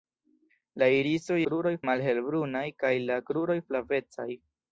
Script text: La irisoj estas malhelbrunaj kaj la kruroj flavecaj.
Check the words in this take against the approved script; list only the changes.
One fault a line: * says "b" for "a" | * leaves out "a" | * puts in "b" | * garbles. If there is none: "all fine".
* says "kruroj" for "estas"